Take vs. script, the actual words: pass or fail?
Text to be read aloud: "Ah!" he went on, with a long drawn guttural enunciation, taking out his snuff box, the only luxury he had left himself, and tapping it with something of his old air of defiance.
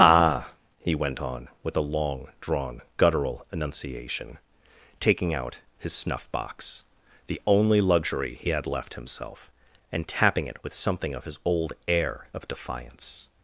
pass